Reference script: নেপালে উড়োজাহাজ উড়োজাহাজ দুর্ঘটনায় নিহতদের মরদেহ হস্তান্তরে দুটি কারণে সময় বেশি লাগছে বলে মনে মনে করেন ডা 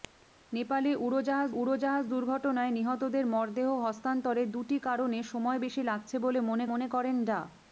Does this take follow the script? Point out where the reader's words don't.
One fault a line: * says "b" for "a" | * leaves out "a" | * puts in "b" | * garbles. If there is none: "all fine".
all fine